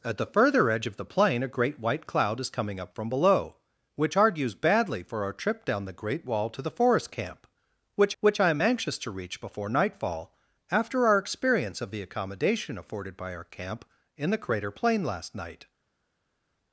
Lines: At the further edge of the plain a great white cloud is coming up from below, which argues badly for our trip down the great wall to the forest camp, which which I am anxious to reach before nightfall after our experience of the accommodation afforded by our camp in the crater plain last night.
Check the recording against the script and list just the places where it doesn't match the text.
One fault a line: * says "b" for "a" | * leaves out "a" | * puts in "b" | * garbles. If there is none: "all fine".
all fine